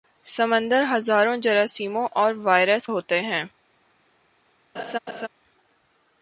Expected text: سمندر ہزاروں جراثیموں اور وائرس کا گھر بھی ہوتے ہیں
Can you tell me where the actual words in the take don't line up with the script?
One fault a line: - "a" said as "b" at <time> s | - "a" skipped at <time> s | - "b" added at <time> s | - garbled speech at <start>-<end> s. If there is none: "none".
- "کا گھر بھی" skipped at 2.9 s